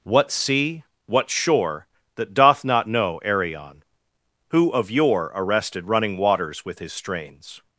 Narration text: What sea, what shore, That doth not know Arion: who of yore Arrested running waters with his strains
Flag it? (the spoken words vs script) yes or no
no